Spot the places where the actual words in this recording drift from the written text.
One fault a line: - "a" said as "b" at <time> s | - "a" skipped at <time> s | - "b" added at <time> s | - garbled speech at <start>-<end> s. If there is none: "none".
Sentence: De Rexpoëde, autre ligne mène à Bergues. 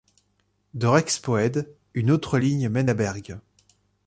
- "une" added at 1.9 s